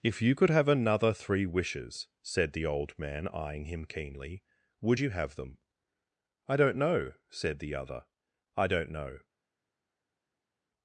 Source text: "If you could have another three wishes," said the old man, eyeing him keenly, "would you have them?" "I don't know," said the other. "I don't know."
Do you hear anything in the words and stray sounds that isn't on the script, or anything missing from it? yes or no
no